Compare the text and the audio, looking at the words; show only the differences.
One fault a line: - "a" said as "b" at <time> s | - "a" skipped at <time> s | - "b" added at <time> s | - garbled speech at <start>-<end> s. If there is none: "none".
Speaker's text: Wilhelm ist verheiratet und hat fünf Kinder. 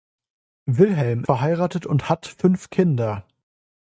- "ist" skipped at 1.2 s